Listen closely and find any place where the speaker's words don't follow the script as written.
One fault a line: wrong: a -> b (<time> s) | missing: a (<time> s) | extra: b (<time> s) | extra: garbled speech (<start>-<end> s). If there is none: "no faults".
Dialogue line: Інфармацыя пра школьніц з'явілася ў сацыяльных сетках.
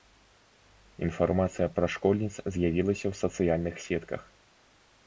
no faults